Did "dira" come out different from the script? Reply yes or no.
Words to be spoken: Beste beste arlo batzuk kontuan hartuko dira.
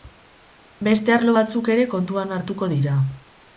no